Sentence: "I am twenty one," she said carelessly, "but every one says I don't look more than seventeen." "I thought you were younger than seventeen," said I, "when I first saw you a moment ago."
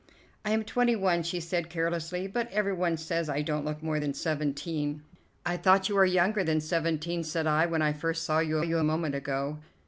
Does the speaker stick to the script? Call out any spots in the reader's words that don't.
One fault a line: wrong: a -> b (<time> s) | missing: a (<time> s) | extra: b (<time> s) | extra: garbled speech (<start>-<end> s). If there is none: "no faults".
extra: you (8.6 s)